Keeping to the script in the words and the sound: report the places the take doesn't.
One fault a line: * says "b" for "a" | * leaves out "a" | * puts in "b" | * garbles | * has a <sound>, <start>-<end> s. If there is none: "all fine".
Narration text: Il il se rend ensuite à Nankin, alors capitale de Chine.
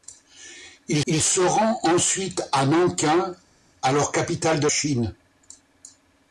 all fine